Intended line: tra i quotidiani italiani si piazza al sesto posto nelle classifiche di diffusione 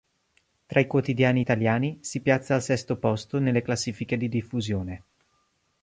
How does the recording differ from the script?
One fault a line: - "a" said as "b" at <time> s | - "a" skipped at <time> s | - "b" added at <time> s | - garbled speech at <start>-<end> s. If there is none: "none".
none